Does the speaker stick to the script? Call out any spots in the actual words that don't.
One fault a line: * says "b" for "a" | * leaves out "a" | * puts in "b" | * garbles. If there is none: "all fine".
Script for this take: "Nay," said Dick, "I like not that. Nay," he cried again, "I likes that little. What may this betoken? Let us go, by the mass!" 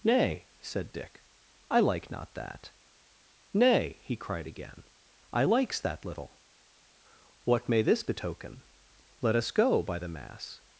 all fine